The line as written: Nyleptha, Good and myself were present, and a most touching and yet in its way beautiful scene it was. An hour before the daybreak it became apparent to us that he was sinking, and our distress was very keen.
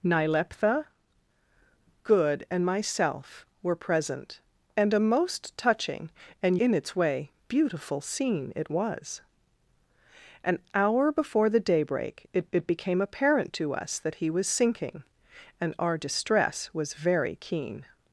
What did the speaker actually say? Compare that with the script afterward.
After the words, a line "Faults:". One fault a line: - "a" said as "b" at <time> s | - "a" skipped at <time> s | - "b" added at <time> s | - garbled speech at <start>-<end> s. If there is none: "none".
Nyleptha, Good and myself were present, and a most touching and in its way beautiful scene it was. An hour before the daybreak it it became apparent to us that he was sinking, and our distress was very keen.
Faults:
- "yet" skipped at 6.6 s
- "it" added at 12.5 s